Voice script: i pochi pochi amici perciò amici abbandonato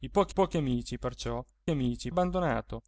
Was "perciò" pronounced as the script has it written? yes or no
yes